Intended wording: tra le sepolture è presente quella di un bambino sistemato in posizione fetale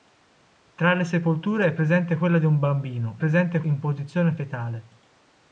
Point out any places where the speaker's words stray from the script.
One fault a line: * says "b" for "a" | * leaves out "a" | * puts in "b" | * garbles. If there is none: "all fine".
* says "presente" for "sistemato"